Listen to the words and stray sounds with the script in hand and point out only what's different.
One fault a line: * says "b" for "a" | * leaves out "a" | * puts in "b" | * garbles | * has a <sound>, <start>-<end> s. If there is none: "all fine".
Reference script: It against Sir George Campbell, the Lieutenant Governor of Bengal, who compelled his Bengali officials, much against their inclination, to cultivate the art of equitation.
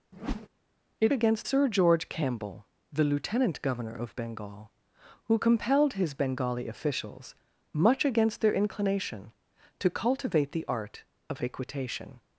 * has a whoosh, 0.1-0.5 s